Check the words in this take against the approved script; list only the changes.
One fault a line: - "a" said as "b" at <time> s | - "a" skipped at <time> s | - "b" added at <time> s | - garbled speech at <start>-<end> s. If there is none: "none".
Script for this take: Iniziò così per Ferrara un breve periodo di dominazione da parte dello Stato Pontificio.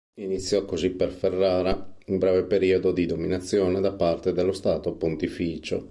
none